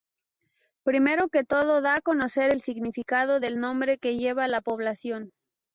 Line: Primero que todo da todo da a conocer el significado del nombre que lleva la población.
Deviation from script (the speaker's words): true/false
true